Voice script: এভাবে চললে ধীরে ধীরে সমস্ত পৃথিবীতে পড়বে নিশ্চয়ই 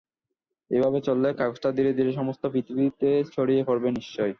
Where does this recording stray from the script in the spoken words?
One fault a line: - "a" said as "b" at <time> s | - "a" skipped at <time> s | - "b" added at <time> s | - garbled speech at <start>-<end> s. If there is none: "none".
- "কাগজটা" added at 1.3 s
- "ছড়িয়ে" added at 3.3 s